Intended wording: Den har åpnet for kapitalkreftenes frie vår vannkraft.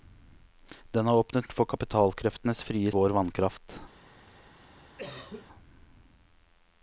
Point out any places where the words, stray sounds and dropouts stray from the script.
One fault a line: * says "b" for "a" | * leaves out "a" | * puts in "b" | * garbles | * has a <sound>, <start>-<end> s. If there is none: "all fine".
* has a cough, 5.0-5.5 s